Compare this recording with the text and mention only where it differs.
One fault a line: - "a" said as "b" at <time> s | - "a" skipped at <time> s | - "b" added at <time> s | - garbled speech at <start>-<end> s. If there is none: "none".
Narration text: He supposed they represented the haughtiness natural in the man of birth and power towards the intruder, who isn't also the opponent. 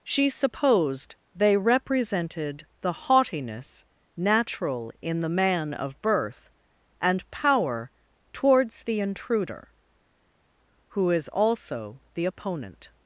- "He" said as "She" at 0.0 s
- "isn't" said as "is" at 11.1 s